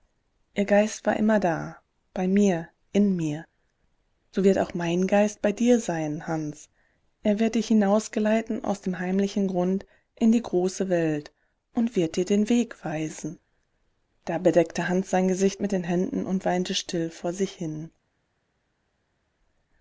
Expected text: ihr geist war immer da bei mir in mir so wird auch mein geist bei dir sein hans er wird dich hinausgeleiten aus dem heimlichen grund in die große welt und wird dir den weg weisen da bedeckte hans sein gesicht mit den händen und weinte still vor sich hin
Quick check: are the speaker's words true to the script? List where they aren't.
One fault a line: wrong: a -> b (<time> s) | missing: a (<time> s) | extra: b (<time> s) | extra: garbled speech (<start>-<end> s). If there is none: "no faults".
no faults